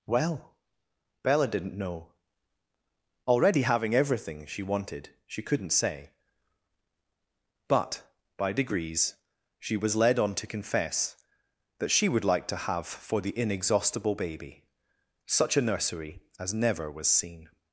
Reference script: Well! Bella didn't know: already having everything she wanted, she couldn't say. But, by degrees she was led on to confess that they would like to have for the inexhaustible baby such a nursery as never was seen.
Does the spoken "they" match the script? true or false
false